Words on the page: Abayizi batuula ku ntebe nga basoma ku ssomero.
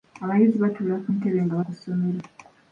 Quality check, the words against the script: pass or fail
fail